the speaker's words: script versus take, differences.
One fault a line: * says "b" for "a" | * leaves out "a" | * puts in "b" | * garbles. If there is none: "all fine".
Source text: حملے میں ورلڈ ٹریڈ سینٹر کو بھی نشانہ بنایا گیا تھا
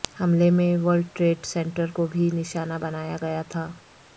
all fine